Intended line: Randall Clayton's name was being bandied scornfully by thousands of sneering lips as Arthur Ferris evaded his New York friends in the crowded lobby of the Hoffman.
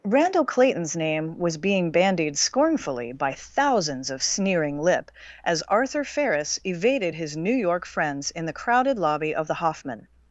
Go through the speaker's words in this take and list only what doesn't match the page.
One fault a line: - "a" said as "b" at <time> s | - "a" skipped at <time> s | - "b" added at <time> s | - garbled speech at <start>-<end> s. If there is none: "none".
- "lips" said as "lip" at 4.8 s